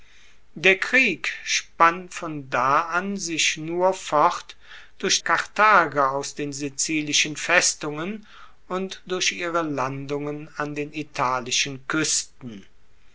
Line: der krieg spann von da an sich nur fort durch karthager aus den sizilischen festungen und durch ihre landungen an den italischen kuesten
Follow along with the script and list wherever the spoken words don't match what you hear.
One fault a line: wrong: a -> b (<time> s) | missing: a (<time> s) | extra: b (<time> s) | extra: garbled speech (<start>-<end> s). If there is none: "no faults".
no faults